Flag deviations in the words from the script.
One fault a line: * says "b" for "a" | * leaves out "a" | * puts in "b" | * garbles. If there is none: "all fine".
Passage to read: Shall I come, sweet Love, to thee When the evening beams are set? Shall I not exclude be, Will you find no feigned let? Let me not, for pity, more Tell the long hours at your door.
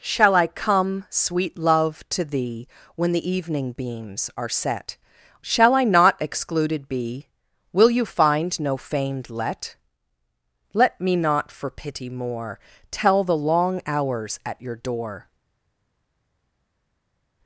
* says "excluded" for "exclude"